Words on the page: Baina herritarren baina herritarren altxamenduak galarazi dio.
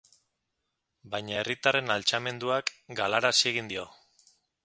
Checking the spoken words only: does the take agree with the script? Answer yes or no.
no